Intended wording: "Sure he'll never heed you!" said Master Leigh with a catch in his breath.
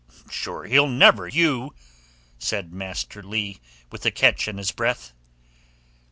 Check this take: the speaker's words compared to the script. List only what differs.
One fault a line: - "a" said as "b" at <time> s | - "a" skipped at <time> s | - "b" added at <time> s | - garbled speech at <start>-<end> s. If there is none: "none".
- "heed" skipped at 1.3 s